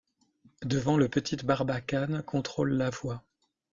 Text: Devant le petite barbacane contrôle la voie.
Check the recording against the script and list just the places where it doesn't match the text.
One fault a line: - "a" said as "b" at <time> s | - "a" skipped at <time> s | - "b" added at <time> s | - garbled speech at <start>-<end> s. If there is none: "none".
none